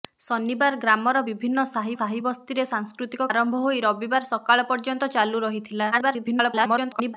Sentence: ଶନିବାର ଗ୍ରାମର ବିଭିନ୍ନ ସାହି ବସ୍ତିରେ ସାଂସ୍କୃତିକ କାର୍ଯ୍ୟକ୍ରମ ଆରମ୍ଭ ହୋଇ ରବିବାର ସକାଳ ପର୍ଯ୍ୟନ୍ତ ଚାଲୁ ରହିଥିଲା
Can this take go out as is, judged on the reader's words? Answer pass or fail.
fail